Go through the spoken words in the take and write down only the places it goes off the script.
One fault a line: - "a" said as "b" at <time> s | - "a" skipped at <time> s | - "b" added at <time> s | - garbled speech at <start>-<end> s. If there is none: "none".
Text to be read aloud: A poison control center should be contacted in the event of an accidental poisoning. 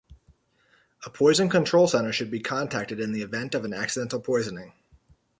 none